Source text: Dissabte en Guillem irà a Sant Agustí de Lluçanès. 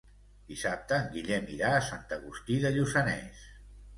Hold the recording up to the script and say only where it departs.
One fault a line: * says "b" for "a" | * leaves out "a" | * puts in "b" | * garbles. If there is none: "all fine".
all fine